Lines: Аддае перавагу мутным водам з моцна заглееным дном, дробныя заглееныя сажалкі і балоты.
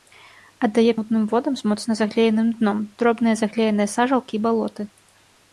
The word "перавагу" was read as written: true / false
false